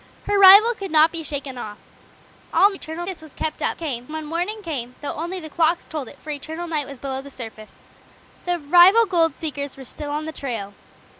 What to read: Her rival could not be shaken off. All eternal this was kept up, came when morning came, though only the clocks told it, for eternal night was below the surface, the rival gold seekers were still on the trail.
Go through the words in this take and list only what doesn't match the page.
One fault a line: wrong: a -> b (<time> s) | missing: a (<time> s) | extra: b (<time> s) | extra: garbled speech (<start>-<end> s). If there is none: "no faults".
no faults